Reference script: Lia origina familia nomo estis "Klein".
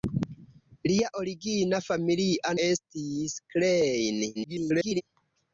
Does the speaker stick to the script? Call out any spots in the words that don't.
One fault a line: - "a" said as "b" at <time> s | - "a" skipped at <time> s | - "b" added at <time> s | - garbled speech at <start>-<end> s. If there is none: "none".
- "nomo" skipped at 2.5 s
- garbled speech at 4.3-5.0 s